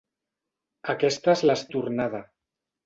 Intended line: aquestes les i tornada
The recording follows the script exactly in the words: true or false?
true